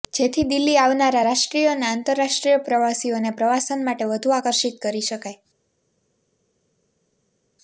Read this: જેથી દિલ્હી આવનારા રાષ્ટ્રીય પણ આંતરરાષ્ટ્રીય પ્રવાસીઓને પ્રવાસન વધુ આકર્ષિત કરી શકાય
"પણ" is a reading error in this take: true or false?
true